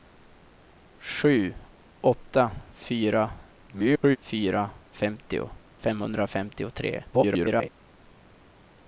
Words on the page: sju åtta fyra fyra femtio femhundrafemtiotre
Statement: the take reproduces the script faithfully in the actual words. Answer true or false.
false